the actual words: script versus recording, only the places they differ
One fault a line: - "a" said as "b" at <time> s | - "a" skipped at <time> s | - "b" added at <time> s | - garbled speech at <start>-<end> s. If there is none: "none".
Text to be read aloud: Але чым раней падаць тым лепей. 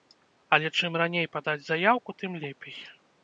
- "заяўку" added at 1.7 s